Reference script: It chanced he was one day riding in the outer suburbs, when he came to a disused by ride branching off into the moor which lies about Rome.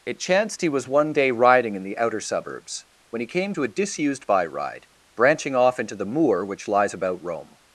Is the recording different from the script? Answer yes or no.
no